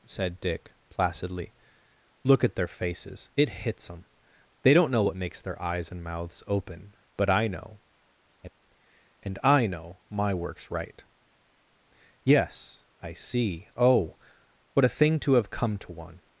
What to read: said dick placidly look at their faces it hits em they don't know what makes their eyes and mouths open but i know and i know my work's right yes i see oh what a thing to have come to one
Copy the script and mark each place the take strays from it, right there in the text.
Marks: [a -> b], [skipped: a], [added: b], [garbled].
said dick placidly look at their faces it hits em they don't know what makes their eyes and mouths open but i know and i know my work's right yes i see oh what a thing to have come to one